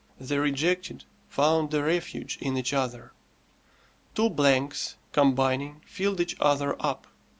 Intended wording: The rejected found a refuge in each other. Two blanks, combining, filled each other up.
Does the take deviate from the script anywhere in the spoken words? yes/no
no